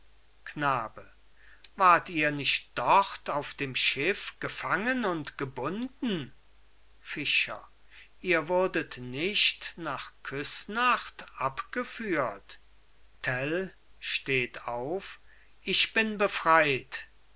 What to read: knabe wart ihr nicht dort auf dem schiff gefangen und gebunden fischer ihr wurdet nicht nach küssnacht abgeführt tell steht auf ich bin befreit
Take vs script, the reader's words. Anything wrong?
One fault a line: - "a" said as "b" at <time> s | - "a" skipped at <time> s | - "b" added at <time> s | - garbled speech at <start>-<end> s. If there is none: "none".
none